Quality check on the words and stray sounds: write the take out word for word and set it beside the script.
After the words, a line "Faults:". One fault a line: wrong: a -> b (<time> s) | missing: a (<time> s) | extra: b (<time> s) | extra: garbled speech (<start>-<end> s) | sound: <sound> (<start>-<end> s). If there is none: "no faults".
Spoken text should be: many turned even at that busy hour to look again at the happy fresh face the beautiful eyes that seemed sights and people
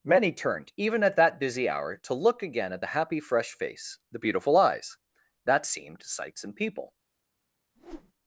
many turned even at that busy hour to look again at the happy fresh face the beautiful eyes that seemed sights and people
Faults:
sound: whoosh (7.8-8.1 s)